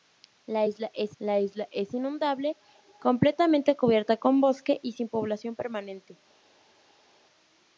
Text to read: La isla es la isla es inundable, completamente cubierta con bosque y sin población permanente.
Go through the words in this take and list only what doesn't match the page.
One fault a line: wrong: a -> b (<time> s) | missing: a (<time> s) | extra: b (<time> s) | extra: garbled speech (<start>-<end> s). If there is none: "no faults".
no faults